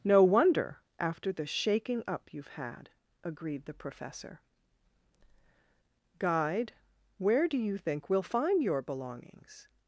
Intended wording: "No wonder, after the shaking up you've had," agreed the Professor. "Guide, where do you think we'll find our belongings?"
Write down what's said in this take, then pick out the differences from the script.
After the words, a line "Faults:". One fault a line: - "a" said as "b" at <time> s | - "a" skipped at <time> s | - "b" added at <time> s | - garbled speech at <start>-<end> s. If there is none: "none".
"No wonder, after the shaking up you've had," agreed the Professor. "Guide, where do you think we'll find your belongings?"
Faults:
- "our" said as "your" at 8.6 s